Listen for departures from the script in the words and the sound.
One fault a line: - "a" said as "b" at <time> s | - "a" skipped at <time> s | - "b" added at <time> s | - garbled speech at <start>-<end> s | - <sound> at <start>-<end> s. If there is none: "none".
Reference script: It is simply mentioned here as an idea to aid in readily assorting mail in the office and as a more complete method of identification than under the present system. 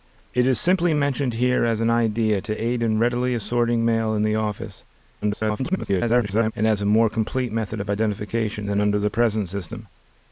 - garbled speech at 5.2-6.5 s